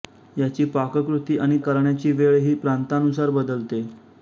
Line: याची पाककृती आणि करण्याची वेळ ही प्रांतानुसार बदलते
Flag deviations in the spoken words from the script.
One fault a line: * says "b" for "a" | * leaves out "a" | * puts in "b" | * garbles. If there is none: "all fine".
all fine